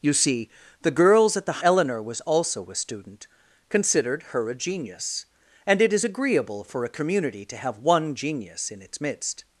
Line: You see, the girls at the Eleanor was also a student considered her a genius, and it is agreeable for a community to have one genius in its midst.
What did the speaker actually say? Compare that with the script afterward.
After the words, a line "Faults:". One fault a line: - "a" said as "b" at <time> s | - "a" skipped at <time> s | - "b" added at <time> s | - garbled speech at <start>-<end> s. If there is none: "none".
You see, the girls at the Eleanor was also a student considered her a genius, and it is agreeable for a community to have one genius in its midst.
Faults:
none